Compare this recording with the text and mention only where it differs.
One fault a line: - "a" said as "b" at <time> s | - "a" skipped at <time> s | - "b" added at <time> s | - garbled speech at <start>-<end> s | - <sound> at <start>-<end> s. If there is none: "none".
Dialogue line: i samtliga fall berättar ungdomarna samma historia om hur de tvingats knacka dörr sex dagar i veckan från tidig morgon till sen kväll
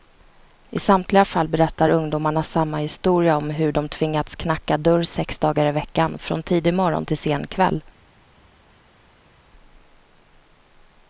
none